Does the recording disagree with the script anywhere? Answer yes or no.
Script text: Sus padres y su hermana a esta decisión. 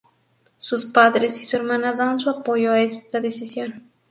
yes